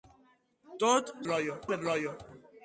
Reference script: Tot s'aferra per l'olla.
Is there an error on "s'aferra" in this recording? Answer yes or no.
yes